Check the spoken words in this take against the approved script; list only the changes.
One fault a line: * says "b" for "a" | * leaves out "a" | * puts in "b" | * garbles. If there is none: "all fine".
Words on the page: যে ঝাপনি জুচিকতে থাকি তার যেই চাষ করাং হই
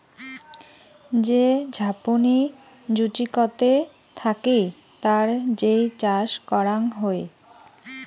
all fine